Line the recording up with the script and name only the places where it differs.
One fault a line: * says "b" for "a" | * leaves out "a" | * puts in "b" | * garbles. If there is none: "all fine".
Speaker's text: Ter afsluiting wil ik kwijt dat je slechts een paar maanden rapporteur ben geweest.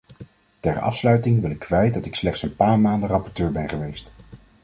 * says "ik" for "je"